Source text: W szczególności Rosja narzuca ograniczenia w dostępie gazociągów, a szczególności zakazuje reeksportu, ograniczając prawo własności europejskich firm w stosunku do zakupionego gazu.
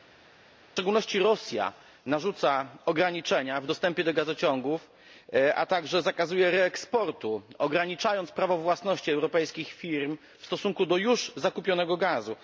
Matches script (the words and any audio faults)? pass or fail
fail